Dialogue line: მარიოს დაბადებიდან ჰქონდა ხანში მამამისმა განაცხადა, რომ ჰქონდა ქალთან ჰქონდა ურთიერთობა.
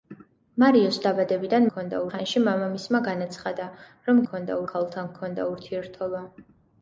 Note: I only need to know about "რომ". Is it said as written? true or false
true